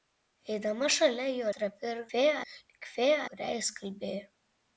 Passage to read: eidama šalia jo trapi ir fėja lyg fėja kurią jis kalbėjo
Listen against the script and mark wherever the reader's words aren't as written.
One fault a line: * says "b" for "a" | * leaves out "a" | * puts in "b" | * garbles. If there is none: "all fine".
all fine